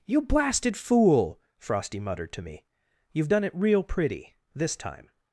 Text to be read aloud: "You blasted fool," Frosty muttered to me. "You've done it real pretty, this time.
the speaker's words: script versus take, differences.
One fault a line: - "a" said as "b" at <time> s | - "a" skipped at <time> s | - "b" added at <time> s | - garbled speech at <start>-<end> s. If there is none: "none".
none